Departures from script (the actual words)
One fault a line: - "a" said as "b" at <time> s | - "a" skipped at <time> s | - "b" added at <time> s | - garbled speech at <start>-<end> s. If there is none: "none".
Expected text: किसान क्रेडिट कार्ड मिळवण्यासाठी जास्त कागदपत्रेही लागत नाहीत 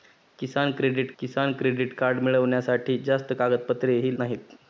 - "किसान क्रेडिट" added at 1.2 s
- "लागत" skipped at 4.1 s